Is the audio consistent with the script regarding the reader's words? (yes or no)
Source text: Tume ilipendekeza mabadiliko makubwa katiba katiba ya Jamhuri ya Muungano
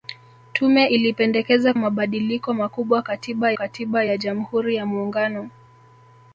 yes